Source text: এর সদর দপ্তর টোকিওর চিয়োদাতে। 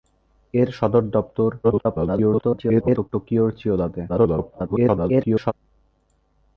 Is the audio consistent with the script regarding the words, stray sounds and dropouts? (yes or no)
no